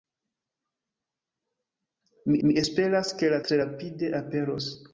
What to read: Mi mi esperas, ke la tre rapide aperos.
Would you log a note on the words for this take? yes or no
no